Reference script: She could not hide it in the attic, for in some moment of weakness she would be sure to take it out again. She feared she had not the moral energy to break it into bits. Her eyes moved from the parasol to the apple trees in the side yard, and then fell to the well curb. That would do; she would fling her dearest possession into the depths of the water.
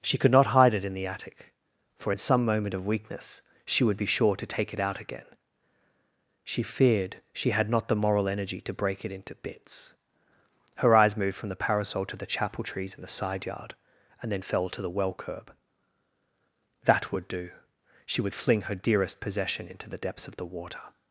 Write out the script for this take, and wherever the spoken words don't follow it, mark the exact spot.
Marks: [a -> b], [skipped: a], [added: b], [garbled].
She could not hide it in the attic, for in some moment of weakness she would be sure to take it out again. She feared she had not the moral energy to break it into bits. Her eyes moved from the parasol to the [apple -> chapel] trees in the side yard, and then fell to the well curb. That would do; she would fling her dearest possession into the depths of the water.